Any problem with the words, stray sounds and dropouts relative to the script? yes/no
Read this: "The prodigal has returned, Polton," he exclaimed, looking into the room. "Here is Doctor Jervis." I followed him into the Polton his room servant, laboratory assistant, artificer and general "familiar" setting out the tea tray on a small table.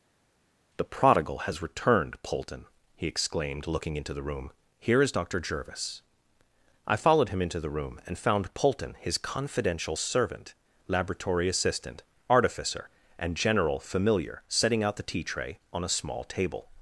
yes